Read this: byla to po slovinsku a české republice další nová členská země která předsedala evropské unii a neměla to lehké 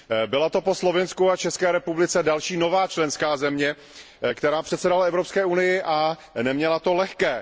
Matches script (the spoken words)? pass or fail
pass